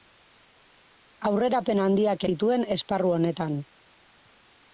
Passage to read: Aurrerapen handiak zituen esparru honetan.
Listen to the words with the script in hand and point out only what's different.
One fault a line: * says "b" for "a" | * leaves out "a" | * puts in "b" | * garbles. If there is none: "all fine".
all fine